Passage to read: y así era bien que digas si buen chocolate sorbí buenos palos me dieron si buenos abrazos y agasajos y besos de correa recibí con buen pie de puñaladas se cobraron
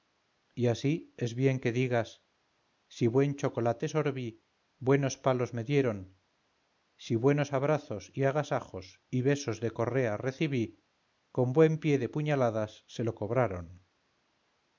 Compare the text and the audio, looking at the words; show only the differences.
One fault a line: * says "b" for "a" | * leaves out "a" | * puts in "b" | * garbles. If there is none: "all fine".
* says "es" for "era"
* puts in "lo"